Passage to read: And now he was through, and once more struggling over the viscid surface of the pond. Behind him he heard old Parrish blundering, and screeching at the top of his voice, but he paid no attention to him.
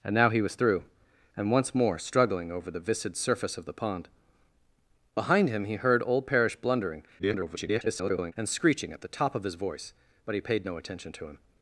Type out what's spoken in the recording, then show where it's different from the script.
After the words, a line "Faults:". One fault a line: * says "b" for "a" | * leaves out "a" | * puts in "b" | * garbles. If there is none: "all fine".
And now he was through, and once more struggling over the viscid surface of the pond. Behind him he heard old Parrish blundering, [garbled] and screeching at the top of his voice, but he paid no attention to him.
Faults:
* garbles